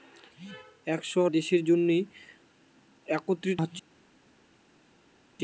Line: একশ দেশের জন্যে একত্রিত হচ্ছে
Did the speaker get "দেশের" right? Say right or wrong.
right